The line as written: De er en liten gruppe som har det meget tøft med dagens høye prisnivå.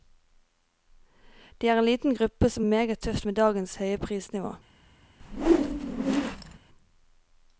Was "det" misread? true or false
true